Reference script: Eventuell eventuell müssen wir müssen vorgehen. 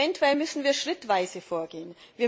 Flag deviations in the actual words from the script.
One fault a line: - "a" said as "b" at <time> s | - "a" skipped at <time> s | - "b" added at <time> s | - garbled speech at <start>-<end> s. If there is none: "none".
- "eventuell" skipped at 0.3 s
- "müssen" said as "schrittweise" at 0.7 s